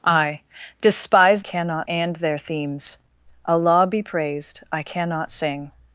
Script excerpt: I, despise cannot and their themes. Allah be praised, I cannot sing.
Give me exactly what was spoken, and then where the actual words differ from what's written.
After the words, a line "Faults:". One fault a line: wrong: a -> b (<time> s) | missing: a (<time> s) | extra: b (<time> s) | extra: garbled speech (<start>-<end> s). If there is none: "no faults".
I, despise cannot and their themes. Allah be praised, I cannot sing.
Faults:
no faults